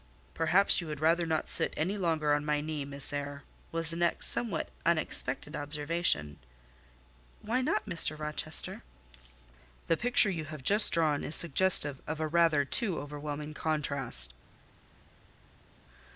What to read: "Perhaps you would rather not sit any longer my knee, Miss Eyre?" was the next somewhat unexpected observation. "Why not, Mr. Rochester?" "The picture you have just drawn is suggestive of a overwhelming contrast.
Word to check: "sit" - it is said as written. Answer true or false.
true